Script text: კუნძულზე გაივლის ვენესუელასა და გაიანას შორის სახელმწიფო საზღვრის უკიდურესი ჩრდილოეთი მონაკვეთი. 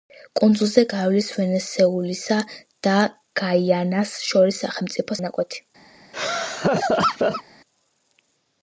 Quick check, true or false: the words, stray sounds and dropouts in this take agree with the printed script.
false